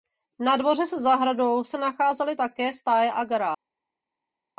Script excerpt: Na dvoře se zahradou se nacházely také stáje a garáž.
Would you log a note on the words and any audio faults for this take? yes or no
no